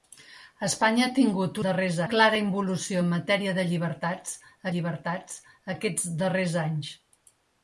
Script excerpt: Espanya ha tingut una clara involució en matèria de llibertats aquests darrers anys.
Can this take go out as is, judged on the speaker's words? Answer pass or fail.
fail